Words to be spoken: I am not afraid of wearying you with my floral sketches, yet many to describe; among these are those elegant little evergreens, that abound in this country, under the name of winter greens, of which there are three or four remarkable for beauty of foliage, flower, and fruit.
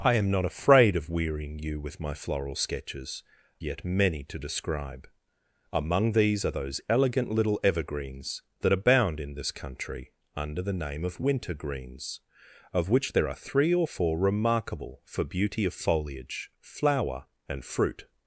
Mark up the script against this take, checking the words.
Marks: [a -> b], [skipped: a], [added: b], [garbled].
I am not afraid of wearying you with my floral sketches, yet many to describe; among these are those elegant little evergreens, that abound in this country, under the name of winter greens, of which there are three or four remarkable for beauty of foliage, flower, and fruit.